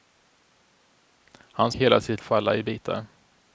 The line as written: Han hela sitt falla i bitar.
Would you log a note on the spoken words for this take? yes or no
no